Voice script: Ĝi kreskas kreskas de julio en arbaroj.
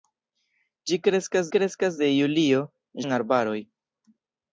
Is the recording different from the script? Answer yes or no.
no